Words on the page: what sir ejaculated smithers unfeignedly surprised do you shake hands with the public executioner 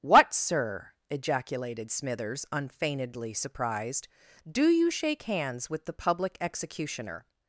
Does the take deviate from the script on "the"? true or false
false